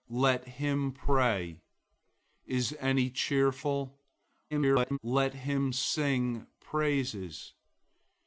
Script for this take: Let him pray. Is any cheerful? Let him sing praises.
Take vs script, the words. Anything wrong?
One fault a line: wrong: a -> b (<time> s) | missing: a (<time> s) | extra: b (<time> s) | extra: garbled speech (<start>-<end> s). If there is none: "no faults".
extra: garbled speech (4.5-5.0 s)